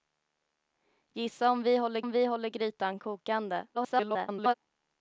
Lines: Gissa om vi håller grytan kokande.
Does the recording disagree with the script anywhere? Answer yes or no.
yes